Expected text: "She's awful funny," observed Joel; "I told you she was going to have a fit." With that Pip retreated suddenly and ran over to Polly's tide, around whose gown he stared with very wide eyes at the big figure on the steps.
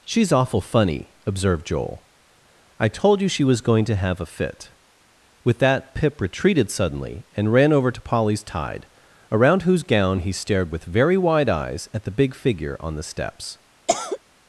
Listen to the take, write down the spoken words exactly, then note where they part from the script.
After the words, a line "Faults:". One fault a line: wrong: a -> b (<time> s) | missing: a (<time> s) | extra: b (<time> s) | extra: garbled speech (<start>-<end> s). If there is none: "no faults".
"She's awful funny," observed Joel; "I told you she was going to have a fit." With that Pip retreated suddenly and ran over to Polly's tide, around whose gown he stared with very wide eyes at the big figure on the steps.
Faults:
no faults